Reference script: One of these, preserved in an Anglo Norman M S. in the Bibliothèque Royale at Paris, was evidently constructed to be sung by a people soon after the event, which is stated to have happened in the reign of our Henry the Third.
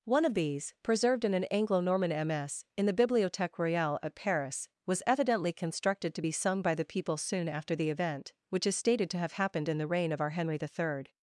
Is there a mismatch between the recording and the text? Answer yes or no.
yes